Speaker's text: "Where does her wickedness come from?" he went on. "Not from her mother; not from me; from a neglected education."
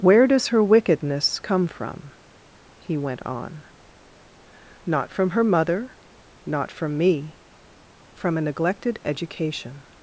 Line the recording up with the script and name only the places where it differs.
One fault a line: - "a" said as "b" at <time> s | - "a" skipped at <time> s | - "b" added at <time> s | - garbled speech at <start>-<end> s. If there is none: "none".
none